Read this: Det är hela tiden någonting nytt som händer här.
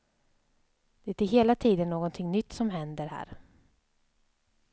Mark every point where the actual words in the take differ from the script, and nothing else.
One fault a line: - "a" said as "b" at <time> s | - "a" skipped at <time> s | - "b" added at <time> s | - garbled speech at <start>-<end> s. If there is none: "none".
none